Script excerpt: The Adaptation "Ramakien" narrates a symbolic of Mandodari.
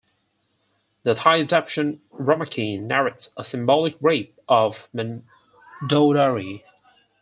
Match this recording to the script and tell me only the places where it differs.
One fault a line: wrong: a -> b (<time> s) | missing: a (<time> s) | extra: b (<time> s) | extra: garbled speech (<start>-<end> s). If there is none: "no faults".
extra: Thai (1.1 s)
extra: rape (4.0 s)